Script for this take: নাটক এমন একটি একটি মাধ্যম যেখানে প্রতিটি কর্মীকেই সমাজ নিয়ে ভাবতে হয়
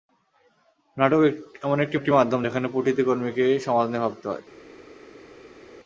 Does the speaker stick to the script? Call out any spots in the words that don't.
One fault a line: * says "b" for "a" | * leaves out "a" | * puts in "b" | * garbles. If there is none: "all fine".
all fine